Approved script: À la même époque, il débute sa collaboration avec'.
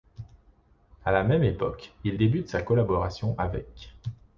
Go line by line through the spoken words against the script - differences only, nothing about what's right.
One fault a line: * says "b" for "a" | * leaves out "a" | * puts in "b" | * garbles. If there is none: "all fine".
all fine